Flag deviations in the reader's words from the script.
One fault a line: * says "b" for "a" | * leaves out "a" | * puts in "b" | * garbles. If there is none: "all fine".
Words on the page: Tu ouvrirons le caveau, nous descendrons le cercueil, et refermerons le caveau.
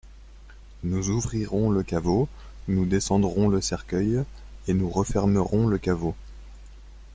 * says "Nous" for "Tu"
* puts in "nous"